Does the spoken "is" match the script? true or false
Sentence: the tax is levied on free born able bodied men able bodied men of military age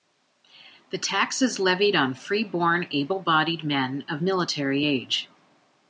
true